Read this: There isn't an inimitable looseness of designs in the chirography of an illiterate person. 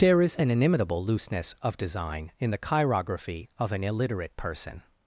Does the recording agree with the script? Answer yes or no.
no